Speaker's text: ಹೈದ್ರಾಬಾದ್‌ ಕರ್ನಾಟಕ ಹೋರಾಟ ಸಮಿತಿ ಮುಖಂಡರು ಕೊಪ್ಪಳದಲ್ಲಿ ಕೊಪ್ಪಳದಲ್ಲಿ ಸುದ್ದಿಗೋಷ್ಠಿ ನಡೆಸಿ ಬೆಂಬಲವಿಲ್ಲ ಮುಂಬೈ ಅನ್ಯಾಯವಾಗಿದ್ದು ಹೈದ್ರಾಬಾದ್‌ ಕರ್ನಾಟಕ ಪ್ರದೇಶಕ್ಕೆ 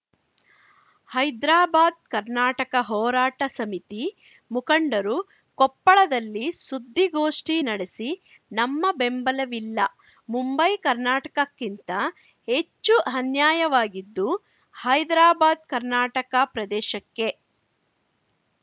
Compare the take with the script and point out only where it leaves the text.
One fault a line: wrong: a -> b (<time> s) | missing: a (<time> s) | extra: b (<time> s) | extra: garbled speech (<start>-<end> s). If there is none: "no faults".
missing: ಕೊಪ್ಪಳದಲ್ಲಿ (6.5 s)
extra: ನಮ್ಮ (8.5 s)
extra: ಕರ್ನಾಟಕಕ್ಕಿಂತ ಹೆಚ್ಚು (10.8 s)